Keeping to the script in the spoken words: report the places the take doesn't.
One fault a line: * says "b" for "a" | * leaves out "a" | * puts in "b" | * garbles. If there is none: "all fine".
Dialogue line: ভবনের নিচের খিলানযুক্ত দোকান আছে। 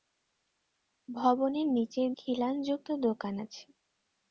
all fine